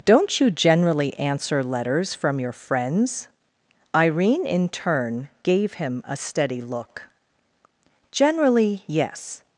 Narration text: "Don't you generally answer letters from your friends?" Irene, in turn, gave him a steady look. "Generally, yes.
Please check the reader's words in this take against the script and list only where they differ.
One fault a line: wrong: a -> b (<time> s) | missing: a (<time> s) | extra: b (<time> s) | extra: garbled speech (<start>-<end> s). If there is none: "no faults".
no faults